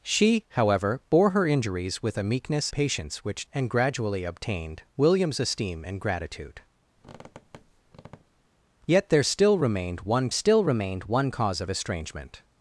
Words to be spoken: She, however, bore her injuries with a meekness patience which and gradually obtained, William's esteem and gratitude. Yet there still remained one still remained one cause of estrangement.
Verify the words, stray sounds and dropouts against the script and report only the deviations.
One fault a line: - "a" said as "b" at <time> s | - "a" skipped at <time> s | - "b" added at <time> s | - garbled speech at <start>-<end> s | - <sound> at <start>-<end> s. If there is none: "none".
- squeak at 7.0-8.5 s